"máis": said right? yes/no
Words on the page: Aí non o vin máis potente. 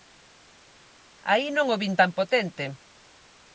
no